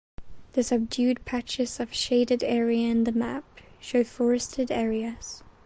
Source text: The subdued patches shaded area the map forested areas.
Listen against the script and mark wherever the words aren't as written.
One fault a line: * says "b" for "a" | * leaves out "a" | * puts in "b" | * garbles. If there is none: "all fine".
* puts in "of"
* puts in "in"
* puts in "show"